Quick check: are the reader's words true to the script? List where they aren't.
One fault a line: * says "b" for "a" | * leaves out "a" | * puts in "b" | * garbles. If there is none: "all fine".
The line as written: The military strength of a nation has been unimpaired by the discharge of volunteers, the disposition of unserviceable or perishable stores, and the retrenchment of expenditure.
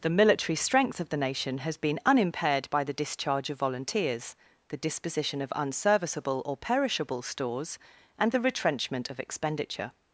* says "the" for "a"